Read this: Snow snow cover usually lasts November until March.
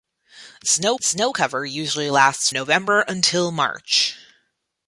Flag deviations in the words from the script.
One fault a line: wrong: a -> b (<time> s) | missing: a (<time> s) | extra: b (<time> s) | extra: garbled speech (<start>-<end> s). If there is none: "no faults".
no faults